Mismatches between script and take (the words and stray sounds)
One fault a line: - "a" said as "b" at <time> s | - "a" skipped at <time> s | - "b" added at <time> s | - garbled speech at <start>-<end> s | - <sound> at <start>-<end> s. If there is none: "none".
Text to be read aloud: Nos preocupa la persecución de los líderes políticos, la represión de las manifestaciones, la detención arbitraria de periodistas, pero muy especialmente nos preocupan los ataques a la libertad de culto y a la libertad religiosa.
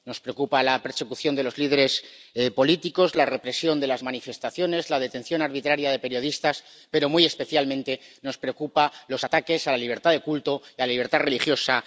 none